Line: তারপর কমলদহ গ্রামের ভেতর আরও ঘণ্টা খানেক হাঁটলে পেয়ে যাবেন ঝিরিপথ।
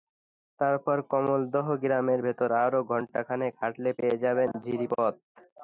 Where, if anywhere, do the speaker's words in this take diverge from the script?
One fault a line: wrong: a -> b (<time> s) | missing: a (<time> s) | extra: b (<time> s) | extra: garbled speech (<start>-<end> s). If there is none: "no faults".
no faults